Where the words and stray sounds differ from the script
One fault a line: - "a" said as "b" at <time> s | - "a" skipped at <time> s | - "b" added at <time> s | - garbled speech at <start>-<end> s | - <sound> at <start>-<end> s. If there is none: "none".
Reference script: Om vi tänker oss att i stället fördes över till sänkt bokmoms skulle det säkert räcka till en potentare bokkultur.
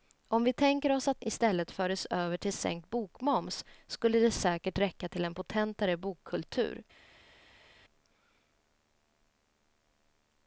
none